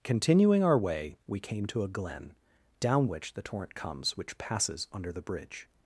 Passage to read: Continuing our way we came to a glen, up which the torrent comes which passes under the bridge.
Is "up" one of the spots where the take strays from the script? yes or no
yes